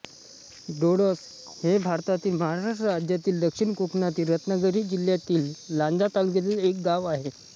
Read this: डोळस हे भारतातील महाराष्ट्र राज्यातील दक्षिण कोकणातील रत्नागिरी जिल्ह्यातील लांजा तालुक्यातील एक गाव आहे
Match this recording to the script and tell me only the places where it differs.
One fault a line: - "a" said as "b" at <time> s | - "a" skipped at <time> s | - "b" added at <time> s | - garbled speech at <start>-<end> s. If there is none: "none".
none